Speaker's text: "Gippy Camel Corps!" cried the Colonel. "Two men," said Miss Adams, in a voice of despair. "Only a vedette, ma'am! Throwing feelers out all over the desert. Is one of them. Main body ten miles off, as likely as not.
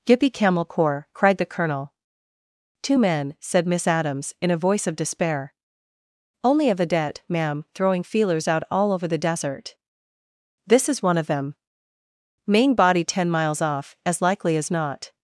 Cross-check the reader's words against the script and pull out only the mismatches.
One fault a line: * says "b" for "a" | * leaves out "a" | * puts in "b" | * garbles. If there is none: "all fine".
* puts in "This"